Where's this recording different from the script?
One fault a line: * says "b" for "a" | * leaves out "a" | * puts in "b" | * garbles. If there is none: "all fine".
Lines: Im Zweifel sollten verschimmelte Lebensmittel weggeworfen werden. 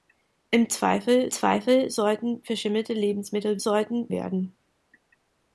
* puts in "Zweifel"
* says "sollten" for "weggeworfen"